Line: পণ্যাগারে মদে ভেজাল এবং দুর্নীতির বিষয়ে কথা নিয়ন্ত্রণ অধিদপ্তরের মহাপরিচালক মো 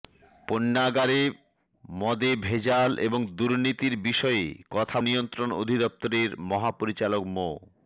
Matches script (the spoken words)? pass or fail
pass